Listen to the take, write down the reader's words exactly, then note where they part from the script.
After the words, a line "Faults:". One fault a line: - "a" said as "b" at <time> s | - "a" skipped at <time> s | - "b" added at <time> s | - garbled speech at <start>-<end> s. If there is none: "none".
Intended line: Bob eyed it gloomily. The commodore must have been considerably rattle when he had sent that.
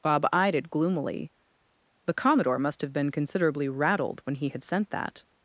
Bob eyed it gloomily. The commodore must have been considerably rattled when he had sent that.
Faults:
- "rattle" said as "rattled" at 3.7 s